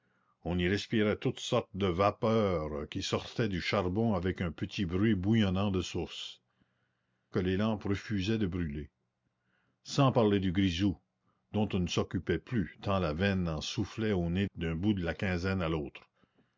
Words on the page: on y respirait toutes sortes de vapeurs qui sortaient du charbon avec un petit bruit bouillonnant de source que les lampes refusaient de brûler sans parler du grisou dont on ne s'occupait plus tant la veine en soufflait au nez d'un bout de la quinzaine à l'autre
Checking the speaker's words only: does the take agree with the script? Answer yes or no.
yes